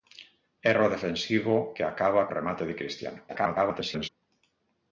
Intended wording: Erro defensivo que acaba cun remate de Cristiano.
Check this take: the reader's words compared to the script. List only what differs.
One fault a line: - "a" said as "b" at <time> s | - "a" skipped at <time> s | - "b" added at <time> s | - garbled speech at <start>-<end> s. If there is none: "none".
- "cun" skipped at 2.3 s
- garbled speech at 3.3-4.1 s